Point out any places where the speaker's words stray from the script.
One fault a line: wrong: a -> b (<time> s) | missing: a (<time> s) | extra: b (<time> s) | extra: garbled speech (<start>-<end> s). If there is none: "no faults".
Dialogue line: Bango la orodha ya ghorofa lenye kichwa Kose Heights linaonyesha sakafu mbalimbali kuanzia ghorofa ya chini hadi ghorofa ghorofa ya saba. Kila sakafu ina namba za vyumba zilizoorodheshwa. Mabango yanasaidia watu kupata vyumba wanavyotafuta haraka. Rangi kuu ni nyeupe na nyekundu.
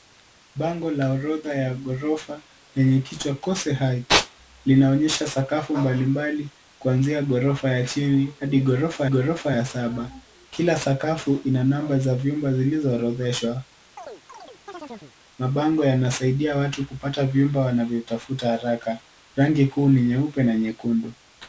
no faults